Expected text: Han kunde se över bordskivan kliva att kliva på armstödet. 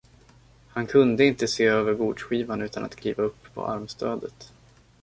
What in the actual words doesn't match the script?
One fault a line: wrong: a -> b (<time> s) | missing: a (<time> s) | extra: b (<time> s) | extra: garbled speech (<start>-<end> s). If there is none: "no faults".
extra: inte (1.2 s)
wrong: kliva -> utan (2.6 s)
extra: upp (3.2 s)